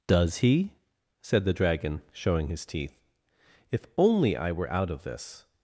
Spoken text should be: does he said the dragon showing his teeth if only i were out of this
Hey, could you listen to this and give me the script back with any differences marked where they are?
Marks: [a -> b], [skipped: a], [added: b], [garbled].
does he said the dragon showing his teeth if only i were out of this